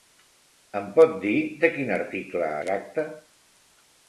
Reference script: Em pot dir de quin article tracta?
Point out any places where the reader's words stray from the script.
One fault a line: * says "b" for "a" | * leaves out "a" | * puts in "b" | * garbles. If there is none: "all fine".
all fine